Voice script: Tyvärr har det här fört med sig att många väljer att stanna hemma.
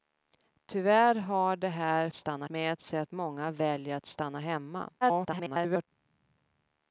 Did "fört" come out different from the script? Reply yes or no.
yes